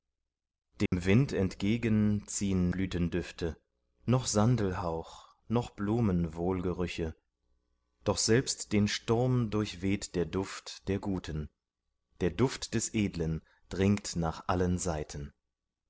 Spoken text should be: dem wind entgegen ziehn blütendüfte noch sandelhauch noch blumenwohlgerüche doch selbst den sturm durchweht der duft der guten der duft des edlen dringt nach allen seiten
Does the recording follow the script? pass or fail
pass